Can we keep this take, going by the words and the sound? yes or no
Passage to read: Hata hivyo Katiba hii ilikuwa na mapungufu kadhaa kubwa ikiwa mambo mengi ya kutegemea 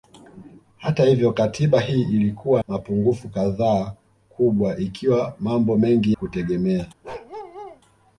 no